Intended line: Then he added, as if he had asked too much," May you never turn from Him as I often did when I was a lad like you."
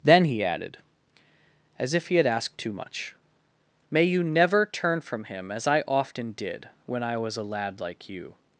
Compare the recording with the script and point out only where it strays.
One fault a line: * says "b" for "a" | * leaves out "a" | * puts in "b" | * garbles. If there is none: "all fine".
all fine